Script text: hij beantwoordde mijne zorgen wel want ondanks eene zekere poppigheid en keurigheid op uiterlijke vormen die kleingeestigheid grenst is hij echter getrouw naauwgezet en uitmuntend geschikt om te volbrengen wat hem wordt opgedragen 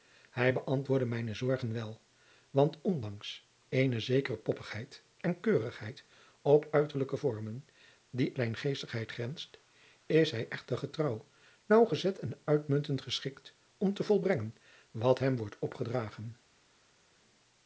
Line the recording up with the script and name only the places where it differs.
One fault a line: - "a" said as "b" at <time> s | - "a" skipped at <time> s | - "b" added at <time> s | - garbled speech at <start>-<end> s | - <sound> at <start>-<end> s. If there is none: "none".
none